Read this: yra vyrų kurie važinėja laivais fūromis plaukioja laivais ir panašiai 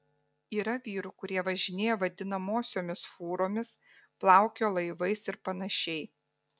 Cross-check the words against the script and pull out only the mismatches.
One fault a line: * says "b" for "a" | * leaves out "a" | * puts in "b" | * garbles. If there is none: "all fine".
* says "vadinamosiomis" for "laivais"